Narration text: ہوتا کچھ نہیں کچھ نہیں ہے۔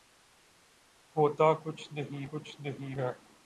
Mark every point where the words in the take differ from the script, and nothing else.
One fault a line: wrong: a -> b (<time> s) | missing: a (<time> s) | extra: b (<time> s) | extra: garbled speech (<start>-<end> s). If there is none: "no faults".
no faults